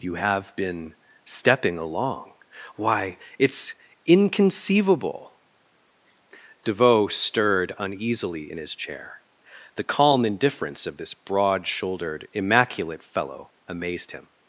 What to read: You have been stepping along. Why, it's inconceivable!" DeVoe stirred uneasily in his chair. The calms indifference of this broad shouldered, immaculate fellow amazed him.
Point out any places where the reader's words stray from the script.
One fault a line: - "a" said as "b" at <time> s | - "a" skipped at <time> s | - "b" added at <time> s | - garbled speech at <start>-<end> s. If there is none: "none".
- "calms" said as "calm" at 9.8 s